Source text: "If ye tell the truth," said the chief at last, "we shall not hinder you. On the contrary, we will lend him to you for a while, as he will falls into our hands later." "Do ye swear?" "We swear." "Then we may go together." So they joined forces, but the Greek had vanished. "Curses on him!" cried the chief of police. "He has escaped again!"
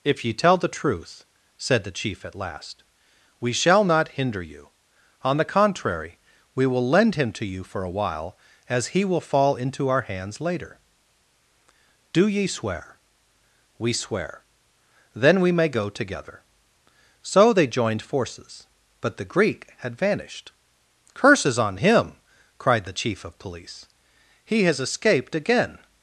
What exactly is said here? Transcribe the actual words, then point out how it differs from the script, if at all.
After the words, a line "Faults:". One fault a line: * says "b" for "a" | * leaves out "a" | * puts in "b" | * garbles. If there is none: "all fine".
"If ye tell the truth," said the chief at last, "we shall not hinder you. On the contrary, we will lend him to you for a while, as he will fall into our hands later." "Do ye swear?" "We swear." "Then we may go together." So they joined forces, but the Greek had vanished. "Curses on him!" cried the chief of police. "He has escaped again!"
Faults:
* says "fall" for "falls"